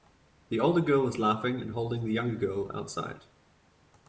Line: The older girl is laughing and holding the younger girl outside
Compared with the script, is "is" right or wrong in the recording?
right